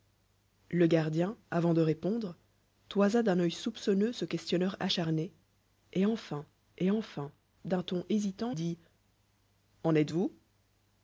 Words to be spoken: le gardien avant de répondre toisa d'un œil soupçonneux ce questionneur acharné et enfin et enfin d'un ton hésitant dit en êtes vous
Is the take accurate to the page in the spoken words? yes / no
yes